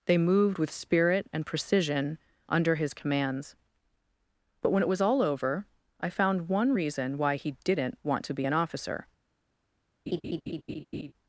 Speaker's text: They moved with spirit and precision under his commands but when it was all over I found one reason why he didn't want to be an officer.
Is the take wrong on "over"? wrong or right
right